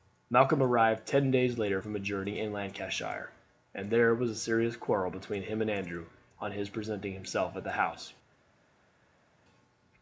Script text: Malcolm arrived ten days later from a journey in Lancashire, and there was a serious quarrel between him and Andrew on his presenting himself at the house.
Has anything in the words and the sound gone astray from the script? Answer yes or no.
no